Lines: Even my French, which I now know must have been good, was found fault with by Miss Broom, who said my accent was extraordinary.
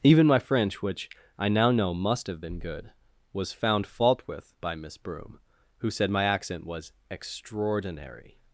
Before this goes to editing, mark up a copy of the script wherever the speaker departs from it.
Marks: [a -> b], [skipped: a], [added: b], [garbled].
Even my French, which I now know must have been good, was found fault with by Miss Broom, who said my accent was extraordinary.